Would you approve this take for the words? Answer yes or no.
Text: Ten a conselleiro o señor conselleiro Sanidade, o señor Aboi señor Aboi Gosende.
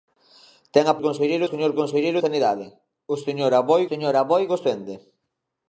yes